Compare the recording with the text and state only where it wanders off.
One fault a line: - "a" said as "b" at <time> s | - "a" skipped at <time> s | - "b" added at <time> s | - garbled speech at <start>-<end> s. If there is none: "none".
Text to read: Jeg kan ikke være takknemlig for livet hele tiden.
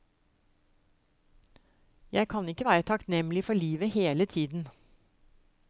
none